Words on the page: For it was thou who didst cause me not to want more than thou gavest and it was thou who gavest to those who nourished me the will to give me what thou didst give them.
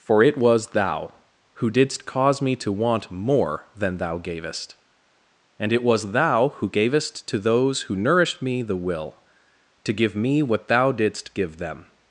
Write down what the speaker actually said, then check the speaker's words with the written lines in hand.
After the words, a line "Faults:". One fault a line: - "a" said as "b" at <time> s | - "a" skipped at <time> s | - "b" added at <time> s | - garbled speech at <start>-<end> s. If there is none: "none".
For it was thou who didst cause me to want more than thou gavest and it was thou who gavest to those who nourished me the will to give me what thou didst give them.
Faults:
- "not" skipped at 2.5 s